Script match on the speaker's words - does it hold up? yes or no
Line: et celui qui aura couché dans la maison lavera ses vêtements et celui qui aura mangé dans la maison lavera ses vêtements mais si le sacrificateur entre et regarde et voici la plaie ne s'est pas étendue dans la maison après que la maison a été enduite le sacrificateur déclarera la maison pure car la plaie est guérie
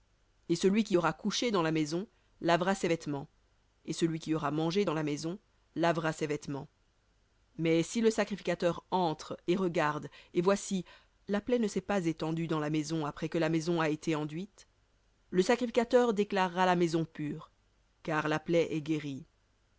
yes